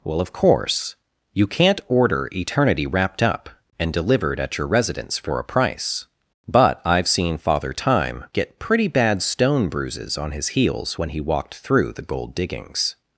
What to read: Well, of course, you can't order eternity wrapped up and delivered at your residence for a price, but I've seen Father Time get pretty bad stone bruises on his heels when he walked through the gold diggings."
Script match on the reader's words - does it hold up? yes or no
yes